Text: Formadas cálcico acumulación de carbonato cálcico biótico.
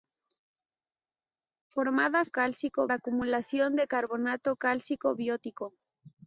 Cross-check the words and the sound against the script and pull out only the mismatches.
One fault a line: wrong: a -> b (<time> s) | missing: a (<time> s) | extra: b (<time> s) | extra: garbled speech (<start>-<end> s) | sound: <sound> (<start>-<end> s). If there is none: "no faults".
no faults